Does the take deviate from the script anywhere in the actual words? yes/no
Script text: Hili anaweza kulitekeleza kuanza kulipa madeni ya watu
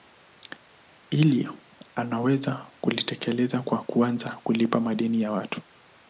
yes